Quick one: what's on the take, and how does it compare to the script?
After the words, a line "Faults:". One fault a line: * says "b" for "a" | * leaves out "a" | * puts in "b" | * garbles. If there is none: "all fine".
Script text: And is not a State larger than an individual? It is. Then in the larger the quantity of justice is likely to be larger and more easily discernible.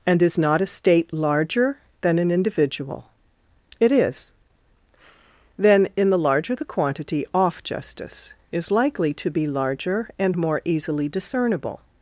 And is not a State larger than an individual? It is. Then in the larger the quantity off justice is likely to be larger and more easily discernible.
Faults:
* says "off" for "of"